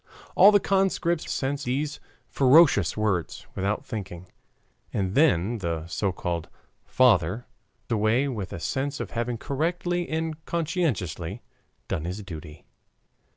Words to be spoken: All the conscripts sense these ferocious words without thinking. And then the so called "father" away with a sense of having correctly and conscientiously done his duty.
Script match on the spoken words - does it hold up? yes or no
yes